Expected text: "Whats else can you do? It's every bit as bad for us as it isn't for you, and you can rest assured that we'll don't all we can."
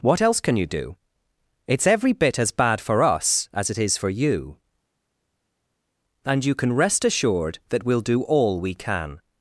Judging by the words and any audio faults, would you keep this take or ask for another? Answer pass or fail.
fail